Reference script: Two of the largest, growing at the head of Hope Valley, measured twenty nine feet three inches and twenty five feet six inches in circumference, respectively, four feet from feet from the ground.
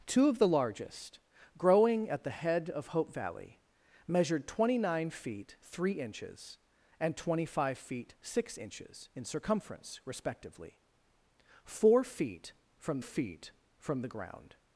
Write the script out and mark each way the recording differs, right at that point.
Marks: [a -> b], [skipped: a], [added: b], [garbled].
Two of the largest, growing at the head of Hope Valley, measured twenty nine feet three inches and twenty five feet six inches in circumference, respectively, four feet from feet from the ground.